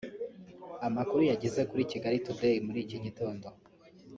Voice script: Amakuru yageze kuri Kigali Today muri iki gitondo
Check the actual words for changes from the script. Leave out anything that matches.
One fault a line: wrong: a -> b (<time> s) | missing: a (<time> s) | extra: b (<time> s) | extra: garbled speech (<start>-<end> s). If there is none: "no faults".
no faults